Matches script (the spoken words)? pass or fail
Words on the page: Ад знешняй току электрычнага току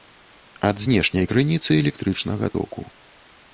fail